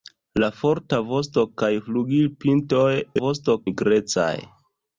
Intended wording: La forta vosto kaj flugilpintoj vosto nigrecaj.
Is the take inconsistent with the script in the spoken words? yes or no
no